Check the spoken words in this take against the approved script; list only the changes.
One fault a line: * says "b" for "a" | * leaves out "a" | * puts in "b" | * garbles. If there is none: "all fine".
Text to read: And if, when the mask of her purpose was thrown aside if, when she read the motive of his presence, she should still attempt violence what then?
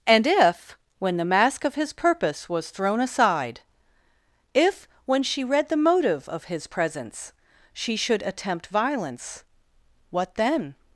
* says "his" for "her"
* leaves out "still"